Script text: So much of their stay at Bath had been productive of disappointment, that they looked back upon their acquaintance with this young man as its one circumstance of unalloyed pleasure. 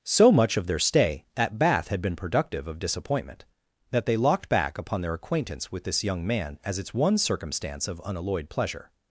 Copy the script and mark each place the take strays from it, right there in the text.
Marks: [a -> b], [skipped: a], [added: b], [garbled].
So much of their stay at Bath had been productive of disappointment, that they [looked -> locked] back upon their acquaintance with this young man as its one circumstance of unalloyed pleasure.